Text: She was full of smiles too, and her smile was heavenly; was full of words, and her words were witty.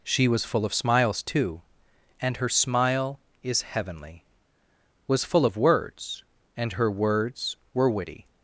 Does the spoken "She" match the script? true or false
true